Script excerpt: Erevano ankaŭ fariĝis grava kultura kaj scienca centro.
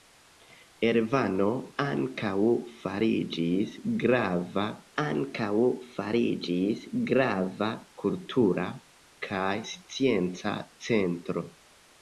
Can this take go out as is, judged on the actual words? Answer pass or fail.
fail